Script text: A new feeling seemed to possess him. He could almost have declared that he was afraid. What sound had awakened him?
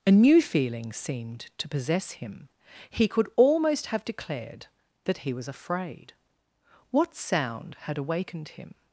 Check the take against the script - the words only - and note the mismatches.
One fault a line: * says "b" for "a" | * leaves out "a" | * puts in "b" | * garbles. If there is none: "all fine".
all fine